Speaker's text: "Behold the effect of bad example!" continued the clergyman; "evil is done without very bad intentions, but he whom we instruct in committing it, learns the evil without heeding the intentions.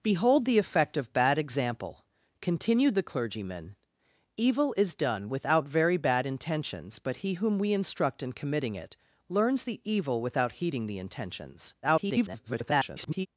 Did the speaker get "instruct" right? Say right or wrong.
right